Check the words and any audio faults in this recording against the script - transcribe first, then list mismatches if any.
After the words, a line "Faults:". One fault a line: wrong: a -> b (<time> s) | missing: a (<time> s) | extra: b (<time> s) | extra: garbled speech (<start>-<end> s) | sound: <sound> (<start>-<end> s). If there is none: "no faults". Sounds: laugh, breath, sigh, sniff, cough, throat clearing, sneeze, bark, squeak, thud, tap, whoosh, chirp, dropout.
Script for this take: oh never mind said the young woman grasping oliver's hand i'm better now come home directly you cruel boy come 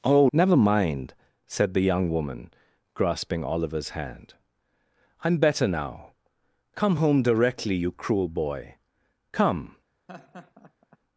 oh never mind said the young woman grasping oliver's hand i'm better now come home directly you cruel boy come
Faults:
sound: laugh (10.1-11.0 s)